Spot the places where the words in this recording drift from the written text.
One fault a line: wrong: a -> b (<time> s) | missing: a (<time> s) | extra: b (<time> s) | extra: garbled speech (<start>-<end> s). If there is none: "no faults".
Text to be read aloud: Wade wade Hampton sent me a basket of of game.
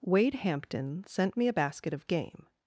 missing: wade (0.3 s)
missing: of (2.1 s)